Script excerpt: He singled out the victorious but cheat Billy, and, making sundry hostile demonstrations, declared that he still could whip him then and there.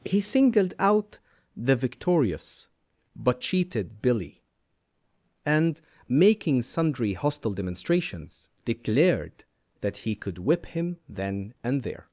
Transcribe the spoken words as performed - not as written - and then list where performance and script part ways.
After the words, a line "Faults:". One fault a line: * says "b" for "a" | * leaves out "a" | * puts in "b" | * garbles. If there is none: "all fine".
He singled out the victorious but cheated Billy, and, making sundry hostile demonstrations, declared that he could whip him then and there.
Faults:
* says "cheated" for "cheat"
* leaves out "still"